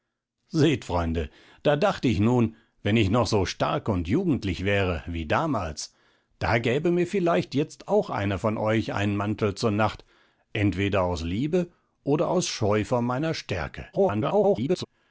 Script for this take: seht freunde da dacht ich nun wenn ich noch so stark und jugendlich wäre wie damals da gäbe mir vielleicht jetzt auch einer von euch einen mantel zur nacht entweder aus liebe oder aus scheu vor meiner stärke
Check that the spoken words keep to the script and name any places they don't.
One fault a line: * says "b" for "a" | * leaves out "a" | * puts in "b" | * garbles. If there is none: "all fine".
* garbles